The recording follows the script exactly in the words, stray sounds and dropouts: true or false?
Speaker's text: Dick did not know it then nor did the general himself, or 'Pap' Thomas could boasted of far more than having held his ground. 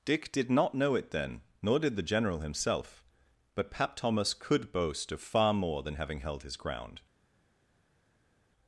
false